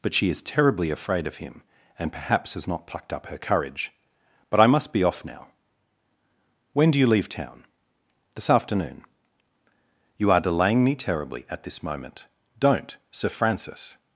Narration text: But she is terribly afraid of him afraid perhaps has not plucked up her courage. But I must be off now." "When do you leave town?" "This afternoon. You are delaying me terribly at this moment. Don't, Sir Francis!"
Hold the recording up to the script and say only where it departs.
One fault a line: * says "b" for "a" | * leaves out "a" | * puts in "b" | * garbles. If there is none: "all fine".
* says "and" for "afraid"